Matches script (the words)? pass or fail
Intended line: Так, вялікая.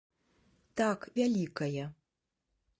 pass